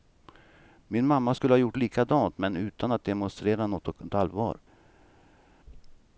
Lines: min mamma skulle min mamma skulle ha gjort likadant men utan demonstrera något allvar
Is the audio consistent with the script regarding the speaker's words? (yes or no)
no